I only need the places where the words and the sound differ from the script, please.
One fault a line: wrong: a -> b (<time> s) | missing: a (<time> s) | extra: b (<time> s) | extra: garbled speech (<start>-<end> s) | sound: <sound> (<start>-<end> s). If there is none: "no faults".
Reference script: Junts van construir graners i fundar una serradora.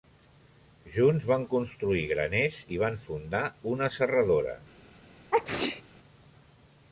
extra: van (2.9 s)
sound: sneeze (5.3-5.8 s)